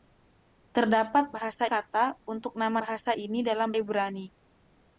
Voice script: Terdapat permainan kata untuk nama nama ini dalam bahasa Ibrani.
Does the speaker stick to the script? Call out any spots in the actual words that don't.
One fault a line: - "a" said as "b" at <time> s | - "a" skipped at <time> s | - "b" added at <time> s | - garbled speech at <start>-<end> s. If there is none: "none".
- "permainan" said as "bahasa" at 1.3 s
- "nama" said as "bahasa" at 2.8 s
- "bahasa" skipped at 3.7 s